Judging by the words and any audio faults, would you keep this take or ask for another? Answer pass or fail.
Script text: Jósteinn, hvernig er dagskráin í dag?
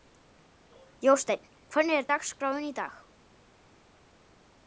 pass